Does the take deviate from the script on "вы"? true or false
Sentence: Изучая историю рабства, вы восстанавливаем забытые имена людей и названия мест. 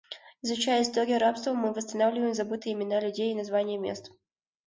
true